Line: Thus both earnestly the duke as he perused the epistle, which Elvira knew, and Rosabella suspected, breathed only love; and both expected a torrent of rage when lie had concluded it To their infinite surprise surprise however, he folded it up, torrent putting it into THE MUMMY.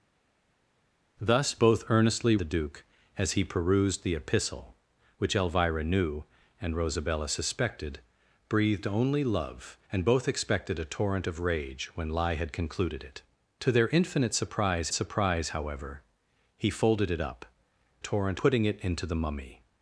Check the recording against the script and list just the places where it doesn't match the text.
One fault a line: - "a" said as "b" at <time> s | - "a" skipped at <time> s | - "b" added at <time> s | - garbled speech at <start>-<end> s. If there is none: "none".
none